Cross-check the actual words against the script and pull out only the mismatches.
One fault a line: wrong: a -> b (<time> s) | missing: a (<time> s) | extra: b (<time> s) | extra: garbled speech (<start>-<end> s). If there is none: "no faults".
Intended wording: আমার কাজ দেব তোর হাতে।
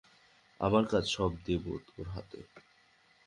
extra: সব (1.1 s)